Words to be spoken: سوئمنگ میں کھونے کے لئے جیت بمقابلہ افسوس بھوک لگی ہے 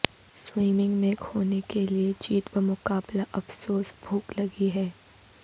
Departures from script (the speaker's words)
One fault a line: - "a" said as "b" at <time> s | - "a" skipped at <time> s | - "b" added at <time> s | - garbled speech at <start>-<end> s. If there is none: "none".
none